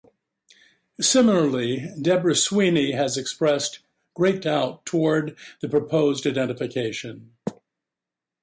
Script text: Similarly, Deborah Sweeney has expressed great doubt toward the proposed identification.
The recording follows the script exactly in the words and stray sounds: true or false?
true